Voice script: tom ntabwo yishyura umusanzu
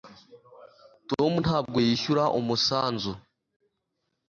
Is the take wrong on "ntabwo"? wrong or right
right